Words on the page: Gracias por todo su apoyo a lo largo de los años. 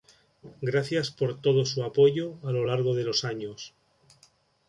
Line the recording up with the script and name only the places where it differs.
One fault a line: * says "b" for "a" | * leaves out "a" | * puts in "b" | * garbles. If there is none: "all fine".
all fine